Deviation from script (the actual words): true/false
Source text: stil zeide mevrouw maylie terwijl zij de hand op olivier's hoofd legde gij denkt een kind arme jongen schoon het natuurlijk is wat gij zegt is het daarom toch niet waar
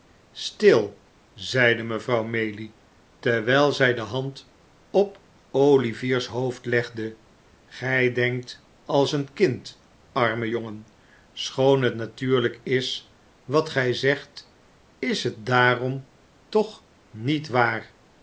true